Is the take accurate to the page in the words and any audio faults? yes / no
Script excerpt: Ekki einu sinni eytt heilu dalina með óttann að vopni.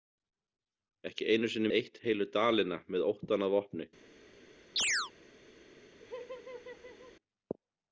no